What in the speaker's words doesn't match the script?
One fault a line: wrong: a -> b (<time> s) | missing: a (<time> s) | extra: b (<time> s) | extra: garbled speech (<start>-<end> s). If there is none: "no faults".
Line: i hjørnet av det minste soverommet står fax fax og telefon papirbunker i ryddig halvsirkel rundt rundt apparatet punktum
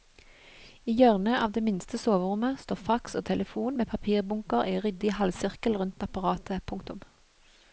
missing: fax (3.2 s)
extra: med (3.8 s)
missing: rundt (6.1 s)